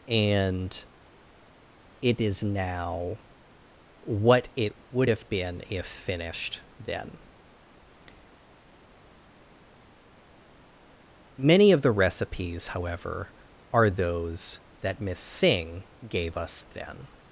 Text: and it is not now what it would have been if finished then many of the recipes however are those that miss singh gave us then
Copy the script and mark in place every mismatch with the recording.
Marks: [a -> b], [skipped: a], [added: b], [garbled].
and it is [skipped: not] now what it would have been if finished then many of the recipes however are those that miss singh gave us then